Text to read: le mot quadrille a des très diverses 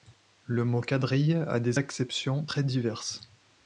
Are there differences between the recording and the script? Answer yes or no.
yes